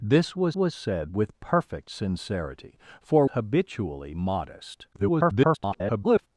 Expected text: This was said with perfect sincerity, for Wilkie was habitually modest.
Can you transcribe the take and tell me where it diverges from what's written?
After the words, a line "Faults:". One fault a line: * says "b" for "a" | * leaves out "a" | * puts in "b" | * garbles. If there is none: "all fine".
This was was said with perfect sincerity, for Habitually modest. [garbled]
Faults:
* puts in "was"
* leaves out "Wilkie was"
* garbles